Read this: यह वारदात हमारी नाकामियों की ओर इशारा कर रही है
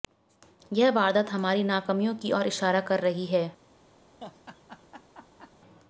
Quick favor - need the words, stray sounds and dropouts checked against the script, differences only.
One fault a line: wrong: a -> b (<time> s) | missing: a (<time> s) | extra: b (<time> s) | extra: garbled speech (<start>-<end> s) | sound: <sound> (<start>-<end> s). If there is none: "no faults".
sound: laugh (4.2-5.5 s)